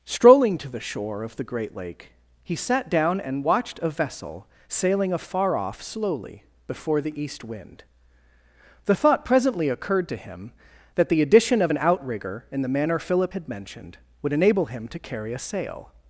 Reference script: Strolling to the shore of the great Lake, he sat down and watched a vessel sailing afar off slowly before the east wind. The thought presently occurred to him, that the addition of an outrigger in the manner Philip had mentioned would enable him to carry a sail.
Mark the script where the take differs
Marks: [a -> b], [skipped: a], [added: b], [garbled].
Strolling to the shore of the great Lake, he sat down and watched a vessel sailing afar off slowly before the east wind. The thought presently occurred to him, that the addition of an outrigger in the manner Philip had mentioned would enable him to carry a sail.